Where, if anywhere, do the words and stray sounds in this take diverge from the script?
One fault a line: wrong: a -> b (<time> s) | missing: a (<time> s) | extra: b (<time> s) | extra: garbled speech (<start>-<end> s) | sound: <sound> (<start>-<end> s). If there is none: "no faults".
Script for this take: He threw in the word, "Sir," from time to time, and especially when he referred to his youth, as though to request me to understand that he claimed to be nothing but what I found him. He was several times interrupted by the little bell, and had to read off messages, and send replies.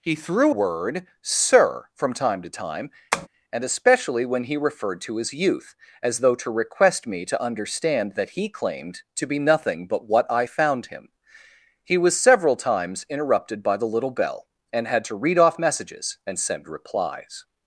missing: in the (0.6 s)
sound: tap (3.1-3.3 s)